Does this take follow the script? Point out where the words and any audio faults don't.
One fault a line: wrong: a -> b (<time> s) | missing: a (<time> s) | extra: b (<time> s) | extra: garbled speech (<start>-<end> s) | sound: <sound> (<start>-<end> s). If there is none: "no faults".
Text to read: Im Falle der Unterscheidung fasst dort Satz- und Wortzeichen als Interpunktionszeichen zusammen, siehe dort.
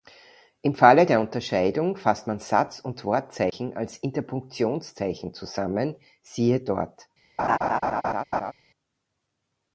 wrong: dort -> man (2.3 s)
sound: laugh (7.4-8.5 s)